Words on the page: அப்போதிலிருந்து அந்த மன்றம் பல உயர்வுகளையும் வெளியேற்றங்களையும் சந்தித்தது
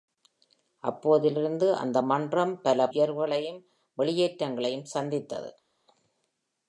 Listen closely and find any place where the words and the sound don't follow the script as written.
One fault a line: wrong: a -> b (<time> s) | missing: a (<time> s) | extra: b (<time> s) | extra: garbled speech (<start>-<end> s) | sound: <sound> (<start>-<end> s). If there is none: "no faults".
no faults